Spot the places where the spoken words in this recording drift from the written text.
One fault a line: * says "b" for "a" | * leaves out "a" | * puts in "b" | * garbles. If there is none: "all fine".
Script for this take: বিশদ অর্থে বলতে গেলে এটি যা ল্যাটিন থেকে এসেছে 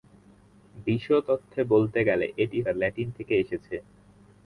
all fine